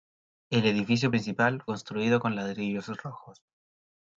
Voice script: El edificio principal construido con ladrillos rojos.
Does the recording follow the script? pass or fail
pass